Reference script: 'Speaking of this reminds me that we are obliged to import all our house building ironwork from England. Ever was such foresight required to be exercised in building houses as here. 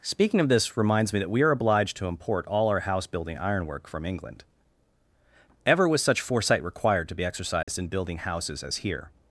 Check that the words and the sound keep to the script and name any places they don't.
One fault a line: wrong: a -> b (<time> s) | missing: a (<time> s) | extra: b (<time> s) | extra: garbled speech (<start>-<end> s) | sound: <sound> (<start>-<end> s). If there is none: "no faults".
sound: dropout (7.6-7.7 s)